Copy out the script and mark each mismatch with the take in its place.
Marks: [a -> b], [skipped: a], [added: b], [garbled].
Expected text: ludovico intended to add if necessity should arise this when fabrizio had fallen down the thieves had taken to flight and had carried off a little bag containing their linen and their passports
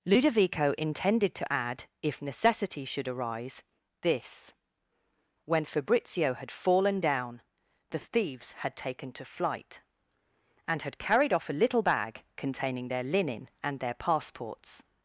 ludovico intended to add if necessity should arise this when fabrizio had fallen down the thieves had taken to flight and had carried off a little bag containing their linen and their passports